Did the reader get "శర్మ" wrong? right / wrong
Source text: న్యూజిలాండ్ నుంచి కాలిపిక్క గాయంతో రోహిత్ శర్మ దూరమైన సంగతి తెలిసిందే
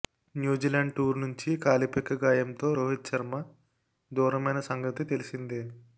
right